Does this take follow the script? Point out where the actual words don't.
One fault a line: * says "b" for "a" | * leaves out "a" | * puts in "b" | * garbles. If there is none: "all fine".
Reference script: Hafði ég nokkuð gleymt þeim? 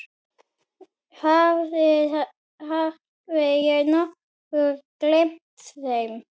all fine